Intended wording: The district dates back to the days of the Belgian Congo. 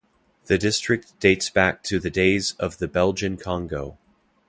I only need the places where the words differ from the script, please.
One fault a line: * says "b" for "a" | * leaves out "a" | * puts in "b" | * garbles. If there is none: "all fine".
all fine